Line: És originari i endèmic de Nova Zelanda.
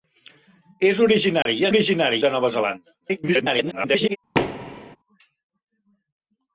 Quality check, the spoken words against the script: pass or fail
fail